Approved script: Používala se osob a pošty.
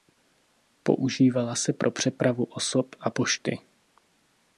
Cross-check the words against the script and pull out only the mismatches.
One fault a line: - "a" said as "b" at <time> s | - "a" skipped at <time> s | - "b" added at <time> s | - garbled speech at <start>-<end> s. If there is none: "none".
- "pro přepravu" added at 1.7 s